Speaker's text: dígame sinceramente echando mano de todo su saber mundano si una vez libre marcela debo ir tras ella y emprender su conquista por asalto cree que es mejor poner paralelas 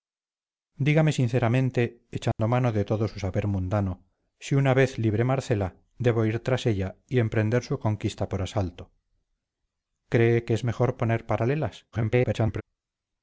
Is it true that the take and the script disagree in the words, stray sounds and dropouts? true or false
true